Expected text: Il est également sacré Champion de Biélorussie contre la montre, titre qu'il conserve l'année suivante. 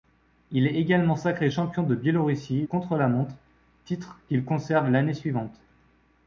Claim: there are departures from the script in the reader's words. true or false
false